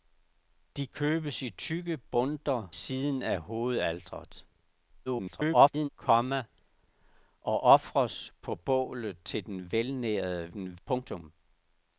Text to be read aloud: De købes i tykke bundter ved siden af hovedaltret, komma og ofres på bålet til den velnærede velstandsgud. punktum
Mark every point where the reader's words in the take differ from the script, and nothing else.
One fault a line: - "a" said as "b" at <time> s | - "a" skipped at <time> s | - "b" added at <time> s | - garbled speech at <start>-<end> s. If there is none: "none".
- "ved" skipped at 2.7 s
- garbled speech at 5.1-5.9 s
- "velstandsgud" said as "den" at 10.5 s